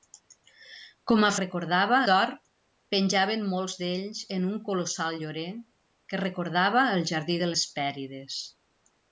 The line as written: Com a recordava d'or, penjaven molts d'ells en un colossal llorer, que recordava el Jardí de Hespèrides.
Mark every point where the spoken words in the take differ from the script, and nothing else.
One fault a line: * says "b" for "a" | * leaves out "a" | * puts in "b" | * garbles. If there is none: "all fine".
all fine